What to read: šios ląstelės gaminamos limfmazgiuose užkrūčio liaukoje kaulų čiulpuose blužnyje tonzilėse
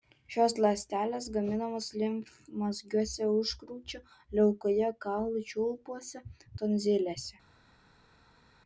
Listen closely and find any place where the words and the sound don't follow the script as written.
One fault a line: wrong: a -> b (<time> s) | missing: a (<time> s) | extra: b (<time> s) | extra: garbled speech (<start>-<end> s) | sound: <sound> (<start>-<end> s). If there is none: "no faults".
missing: blužnyje (6.2 s)